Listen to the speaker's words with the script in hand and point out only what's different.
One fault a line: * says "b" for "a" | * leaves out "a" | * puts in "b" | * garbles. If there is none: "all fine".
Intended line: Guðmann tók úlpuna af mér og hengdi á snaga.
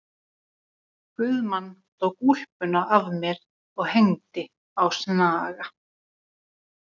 all fine